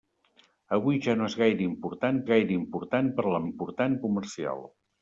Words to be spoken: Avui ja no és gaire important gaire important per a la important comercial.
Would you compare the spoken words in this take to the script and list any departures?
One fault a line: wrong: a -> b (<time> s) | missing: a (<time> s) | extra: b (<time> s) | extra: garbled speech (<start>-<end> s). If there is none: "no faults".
no faults